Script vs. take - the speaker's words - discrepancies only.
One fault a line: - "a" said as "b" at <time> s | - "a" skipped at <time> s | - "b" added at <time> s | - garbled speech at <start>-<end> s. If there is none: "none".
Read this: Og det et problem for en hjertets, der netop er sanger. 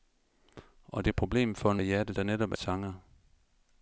none